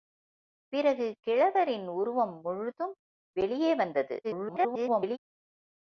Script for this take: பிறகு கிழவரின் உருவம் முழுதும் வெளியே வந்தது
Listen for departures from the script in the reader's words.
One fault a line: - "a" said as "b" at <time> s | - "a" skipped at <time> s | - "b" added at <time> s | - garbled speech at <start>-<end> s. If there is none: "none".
- garbled speech at 4.2-5.2 s